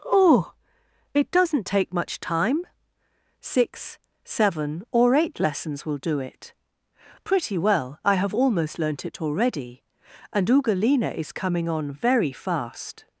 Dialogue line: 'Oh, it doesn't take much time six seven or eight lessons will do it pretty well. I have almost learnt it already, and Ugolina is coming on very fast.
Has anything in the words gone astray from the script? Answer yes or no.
no